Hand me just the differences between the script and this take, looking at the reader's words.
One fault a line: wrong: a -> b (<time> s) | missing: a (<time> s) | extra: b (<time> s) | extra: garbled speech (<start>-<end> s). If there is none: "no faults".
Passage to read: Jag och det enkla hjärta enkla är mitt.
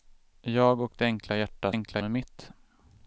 no faults